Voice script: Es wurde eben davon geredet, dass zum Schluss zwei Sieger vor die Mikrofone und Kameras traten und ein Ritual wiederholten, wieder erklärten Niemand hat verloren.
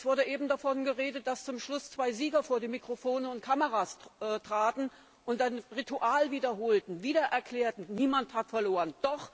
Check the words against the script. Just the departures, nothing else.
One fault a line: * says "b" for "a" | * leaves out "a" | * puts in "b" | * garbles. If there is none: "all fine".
all fine